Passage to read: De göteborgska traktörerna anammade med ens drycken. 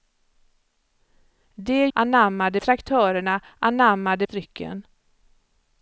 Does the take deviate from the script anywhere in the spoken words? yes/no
yes